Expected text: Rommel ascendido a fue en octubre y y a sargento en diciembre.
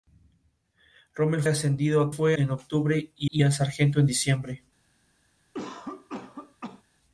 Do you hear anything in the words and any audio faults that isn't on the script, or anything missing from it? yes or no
yes